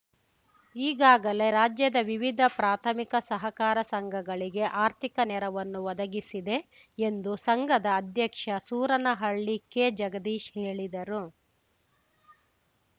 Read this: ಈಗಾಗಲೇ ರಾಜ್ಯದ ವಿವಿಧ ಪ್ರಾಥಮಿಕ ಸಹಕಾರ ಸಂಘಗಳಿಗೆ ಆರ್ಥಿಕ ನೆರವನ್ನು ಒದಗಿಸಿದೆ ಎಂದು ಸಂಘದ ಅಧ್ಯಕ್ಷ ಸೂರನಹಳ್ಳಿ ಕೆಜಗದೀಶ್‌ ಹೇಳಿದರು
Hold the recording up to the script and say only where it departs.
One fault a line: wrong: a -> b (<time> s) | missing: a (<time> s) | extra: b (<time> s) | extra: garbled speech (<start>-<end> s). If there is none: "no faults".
no faults